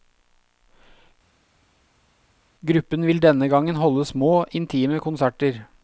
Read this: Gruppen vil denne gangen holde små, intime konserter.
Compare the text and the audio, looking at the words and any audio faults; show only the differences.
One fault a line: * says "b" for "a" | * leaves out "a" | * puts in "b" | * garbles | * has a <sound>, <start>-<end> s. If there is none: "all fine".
all fine